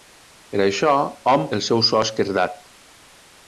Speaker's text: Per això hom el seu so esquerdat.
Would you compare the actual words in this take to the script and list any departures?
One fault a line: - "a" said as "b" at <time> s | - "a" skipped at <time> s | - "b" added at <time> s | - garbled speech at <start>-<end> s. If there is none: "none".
none